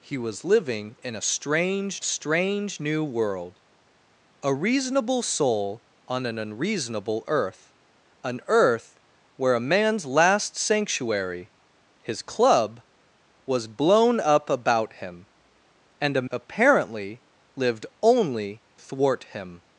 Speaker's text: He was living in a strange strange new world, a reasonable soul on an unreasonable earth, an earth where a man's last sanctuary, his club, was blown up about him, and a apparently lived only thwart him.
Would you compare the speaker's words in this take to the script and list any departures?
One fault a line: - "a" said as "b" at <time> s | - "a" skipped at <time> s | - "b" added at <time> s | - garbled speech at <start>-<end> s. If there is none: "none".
none